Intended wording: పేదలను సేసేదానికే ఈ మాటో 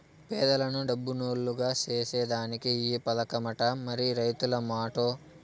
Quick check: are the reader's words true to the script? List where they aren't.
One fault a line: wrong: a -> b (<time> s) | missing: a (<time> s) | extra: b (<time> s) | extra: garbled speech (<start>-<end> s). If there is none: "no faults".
extra: డబ్బునోల్లుగ (0.9 s)
extra: పదకమట మరి రైతుల (3.1 s)